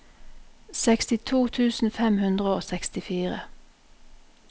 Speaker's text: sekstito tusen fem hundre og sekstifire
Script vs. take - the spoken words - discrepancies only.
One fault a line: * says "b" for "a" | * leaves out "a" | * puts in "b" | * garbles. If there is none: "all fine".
all fine